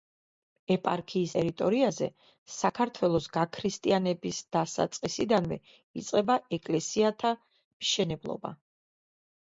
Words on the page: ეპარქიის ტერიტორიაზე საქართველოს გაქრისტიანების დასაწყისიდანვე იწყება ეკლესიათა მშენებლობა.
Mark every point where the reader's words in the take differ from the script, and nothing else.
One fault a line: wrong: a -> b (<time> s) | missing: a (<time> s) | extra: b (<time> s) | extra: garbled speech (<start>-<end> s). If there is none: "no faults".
no faults